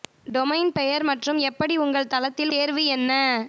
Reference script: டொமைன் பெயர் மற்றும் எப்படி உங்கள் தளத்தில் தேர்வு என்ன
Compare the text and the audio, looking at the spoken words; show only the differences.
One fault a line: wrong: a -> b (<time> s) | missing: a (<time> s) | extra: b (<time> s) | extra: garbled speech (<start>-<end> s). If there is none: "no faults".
no faults